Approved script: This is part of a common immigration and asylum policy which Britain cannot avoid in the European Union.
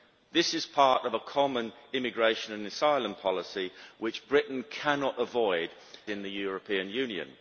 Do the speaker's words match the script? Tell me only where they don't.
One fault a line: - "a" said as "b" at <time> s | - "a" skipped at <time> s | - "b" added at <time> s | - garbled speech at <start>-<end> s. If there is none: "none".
none